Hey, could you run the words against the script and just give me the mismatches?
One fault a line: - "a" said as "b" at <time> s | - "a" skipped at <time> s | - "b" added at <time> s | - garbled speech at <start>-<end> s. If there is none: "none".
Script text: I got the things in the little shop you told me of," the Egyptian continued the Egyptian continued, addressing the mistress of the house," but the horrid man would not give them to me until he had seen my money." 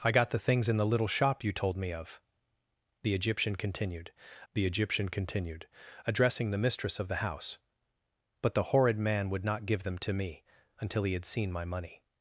none